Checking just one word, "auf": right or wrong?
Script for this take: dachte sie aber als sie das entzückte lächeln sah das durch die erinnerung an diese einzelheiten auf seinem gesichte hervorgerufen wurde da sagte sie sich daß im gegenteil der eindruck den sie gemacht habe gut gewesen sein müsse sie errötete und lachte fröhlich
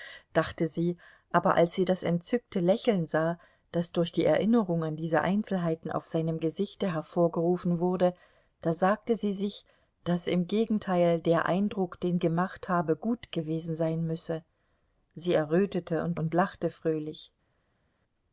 right